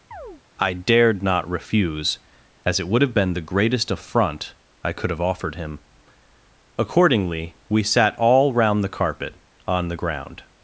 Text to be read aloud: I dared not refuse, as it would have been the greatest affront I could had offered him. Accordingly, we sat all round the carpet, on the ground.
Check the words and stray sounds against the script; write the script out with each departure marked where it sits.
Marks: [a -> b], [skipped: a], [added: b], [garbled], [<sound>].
[chirp] I dared not refuse, as it would have been the greatest affront I could [had -> have] offered him. Accordingly, we sat all round the carpet, on the ground.